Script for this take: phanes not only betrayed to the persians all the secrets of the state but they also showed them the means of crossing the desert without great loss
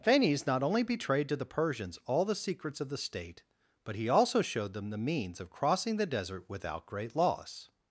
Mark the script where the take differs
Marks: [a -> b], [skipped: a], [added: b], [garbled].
phanes not only betrayed to the persians all the secrets of the state but [they -> he] also showed them the means of crossing the desert without great loss